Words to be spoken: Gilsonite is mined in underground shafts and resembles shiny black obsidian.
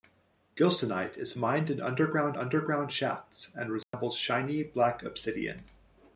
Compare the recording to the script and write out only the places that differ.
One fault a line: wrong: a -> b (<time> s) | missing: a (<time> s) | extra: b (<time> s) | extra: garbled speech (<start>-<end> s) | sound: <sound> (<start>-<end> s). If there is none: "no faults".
extra: underground (2.4 s)
sound: dropout (3.8-3.9 s)